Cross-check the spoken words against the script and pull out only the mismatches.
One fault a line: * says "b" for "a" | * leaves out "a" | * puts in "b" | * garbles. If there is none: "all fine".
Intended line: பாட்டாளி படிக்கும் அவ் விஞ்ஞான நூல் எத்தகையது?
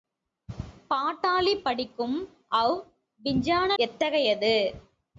* leaves out "நூல்"